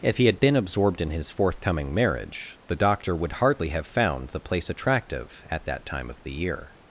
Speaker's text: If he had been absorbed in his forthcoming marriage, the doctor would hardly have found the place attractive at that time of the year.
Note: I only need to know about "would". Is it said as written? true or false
true